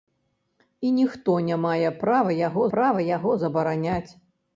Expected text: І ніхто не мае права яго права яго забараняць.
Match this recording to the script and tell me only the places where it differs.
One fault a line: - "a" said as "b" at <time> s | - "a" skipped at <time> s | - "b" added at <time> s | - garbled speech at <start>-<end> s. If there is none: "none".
none